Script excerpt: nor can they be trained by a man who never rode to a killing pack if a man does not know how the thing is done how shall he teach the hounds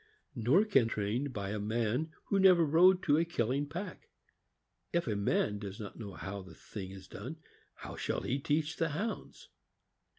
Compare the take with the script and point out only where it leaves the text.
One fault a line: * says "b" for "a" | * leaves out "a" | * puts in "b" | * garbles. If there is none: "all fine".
* leaves out "they be"